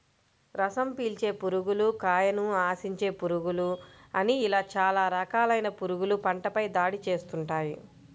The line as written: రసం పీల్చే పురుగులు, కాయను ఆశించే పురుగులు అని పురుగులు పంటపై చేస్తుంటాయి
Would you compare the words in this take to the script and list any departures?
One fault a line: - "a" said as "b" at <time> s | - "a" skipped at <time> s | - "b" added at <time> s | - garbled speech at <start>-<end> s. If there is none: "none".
- "ఇలా చాలా రకాలైన" added at 4.5 s
- "దాడి" added at 6.8 s